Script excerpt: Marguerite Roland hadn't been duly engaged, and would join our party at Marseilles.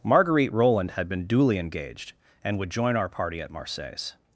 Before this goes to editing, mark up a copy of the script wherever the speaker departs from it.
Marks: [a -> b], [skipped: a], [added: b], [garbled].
Marguerite Roland [hadn't -> had] been duly engaged, and would join our party at Marseilles.